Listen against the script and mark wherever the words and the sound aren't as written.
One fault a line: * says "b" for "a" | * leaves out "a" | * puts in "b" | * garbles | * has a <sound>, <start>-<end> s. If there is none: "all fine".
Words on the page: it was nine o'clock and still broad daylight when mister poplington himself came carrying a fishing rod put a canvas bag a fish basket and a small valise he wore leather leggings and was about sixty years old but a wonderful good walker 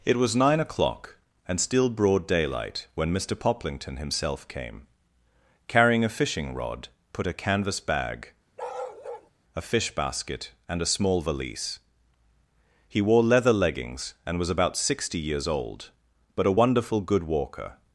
* has a bark, 8.6-9.3 s